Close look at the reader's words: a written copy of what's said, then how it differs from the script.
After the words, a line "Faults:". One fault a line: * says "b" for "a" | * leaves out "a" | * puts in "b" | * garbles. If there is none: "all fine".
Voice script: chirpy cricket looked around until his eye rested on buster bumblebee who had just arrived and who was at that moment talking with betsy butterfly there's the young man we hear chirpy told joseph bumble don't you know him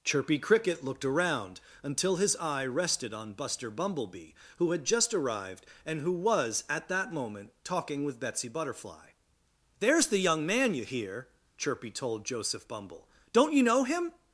chirpy cricket looked around until his eye rested on buster bumblebee who had just arrived and who was at that moment talking with betsy butterfly there's the young man you hear chirpy told joseph bumble don't you know him
Faults:
* says "you" for "we"